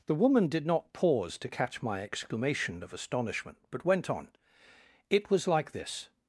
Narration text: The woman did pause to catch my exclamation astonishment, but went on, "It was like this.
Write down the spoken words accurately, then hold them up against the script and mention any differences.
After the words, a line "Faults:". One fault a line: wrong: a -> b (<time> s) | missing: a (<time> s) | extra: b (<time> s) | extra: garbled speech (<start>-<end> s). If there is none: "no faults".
The woman did not pause to catch my exclamation of astonishment, but went on, "It was like this.
Faults:
extra: not (0.7 s)
extra: of (2.8 s)